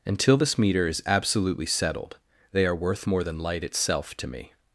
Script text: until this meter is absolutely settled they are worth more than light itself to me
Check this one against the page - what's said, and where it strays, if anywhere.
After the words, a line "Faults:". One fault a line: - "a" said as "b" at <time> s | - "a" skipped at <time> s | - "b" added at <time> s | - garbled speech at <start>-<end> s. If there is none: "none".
until this meter is absolutely settled they are worth more than light itself to me
Faults:
none